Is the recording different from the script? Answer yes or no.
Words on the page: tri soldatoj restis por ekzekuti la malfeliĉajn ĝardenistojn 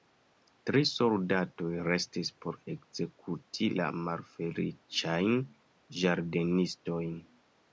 no